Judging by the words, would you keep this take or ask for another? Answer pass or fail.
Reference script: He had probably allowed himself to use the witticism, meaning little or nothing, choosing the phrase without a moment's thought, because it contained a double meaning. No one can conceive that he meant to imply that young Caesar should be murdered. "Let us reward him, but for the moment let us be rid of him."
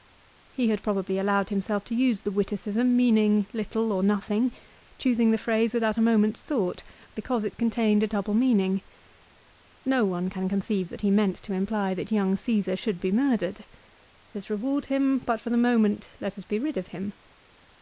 fail